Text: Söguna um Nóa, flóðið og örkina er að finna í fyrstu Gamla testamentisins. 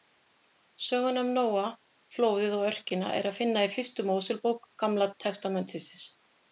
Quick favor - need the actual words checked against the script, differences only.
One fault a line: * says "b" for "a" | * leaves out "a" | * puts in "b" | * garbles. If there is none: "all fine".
* puts in "Mósebók"